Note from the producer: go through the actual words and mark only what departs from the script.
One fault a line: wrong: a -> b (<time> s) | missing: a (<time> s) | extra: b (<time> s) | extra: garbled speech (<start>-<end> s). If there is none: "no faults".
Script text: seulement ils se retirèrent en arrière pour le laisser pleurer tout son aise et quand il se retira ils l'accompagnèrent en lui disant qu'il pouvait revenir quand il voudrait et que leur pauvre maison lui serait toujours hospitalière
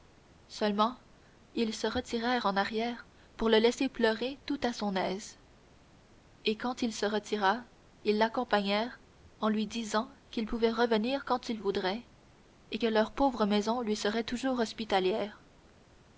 extra: à (4.6 s)